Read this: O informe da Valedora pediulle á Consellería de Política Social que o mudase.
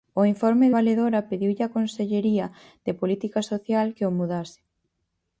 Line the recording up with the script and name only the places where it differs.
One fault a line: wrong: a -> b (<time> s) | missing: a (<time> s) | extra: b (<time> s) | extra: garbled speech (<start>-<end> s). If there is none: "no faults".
missing: da (0.7 s)